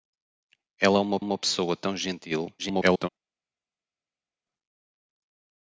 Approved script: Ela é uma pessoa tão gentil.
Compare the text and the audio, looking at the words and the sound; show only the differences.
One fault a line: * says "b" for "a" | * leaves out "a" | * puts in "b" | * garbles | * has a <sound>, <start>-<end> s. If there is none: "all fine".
* puts in "uma"
* garbles